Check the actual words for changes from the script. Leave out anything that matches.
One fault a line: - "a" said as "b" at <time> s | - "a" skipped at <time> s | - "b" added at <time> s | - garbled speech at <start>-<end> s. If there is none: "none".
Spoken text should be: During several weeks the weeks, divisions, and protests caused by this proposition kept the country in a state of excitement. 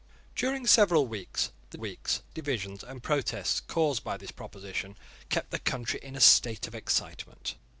none